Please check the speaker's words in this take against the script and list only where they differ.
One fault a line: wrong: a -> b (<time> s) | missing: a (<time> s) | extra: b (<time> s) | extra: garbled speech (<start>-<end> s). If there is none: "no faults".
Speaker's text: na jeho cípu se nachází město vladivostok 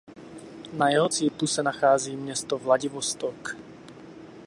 no faults